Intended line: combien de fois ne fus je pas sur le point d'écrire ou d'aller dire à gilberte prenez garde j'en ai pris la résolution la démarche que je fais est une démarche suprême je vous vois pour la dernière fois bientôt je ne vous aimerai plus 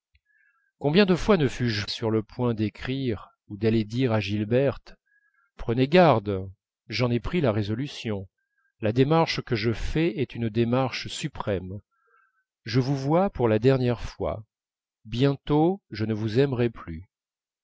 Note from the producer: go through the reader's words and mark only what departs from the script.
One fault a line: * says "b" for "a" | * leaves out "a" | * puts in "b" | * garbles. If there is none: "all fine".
* leaves out "pas"